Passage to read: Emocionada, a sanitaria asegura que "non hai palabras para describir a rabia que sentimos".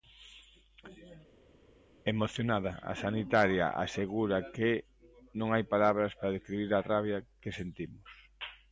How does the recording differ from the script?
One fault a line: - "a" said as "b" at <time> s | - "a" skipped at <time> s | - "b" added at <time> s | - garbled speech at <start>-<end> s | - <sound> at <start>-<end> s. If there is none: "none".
none